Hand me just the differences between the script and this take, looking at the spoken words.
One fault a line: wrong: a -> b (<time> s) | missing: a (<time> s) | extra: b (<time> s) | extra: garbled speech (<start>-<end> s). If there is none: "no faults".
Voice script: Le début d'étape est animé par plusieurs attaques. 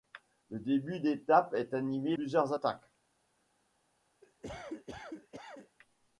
missing: par (2.2 s)